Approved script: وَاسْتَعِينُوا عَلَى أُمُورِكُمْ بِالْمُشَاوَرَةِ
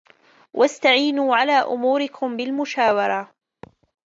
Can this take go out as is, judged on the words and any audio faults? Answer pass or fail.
fail